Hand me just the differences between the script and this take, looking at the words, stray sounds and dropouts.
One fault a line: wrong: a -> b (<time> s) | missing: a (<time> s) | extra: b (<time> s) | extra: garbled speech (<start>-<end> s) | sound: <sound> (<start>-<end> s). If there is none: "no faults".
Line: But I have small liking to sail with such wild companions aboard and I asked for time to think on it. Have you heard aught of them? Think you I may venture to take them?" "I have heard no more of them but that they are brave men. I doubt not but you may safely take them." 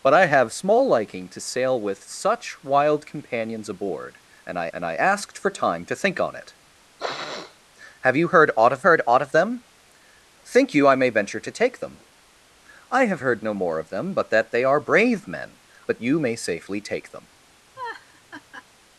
extra: and I (4.7 s)
sound: sniff (7.0-7.6 s)
extra: heard aught of (8.8 s)
missing: I doubt not (15.6 s)
sound: laugh (17.8-18.7 s)